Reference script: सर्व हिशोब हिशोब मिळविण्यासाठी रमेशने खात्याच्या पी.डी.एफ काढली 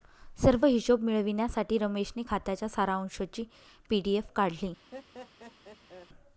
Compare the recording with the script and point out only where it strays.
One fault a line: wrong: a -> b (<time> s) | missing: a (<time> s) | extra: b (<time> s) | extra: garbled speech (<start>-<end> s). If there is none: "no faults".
missing: हिशोब (1.0 s)
extra: सारांशची (2.7 s)